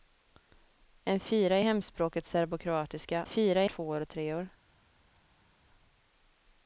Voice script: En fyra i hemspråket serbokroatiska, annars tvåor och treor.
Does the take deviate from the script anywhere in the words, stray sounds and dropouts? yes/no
yes